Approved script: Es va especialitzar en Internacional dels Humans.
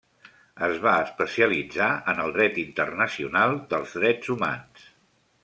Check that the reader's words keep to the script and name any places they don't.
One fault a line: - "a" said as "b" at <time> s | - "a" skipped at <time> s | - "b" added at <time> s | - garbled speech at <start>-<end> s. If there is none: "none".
- "el Dret" added at 2.2 s
- "Drets" added at 4.0 s